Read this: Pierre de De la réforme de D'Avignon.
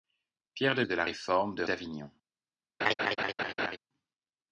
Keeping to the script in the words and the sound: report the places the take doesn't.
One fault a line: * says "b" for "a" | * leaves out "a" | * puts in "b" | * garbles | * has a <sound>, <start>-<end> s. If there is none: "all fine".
* has a laugh, 2.8-3.8 s